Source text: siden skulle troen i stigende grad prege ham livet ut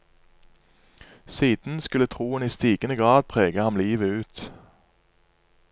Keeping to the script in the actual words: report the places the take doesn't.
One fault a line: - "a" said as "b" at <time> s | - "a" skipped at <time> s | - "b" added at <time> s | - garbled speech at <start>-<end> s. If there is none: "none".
none